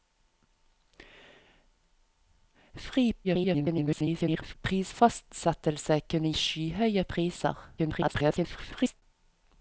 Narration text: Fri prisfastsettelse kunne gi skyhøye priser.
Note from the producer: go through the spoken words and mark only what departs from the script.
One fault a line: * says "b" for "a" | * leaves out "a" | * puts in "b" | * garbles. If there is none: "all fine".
* garbles
* leaves out "gi"
* garbles